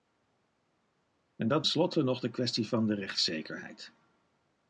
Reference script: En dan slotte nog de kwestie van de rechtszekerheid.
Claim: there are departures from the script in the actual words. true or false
false